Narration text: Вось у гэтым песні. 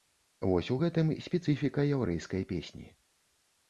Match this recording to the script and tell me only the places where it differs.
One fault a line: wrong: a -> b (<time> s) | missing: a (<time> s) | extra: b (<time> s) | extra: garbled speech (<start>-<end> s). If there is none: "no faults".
extra: спецыфіка яўрэйскай (1.3 s)